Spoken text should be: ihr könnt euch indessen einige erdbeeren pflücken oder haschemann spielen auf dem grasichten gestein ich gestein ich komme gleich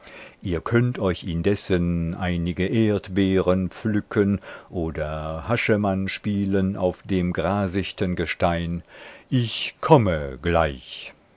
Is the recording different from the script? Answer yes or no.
yes